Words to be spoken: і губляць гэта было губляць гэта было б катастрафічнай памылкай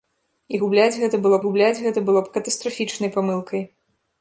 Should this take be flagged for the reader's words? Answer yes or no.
no